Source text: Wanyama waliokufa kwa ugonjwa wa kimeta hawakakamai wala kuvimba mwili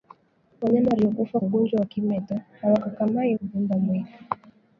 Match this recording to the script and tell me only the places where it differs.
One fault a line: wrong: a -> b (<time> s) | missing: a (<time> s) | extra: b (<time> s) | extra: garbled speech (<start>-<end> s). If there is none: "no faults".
missing: kwa (1.4 s)
missing: wala (3.4 s)